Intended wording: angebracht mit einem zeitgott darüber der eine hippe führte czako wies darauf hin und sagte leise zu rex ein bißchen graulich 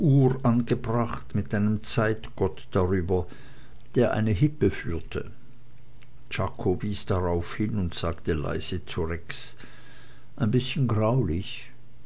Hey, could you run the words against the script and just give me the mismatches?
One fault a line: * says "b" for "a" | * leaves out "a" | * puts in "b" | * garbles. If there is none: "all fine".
all fine